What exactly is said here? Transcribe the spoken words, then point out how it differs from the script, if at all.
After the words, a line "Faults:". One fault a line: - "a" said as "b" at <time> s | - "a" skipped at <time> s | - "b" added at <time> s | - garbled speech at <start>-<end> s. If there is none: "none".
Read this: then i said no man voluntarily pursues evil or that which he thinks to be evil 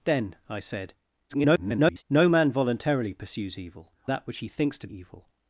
then i said [garbled] no man voluntarily pursues evil that which he thinks to evil
Faults:
- garbled speech at 1.3-2.0 s
- "or" skipped at 3.9 s
- "be" skipped at 4.9 s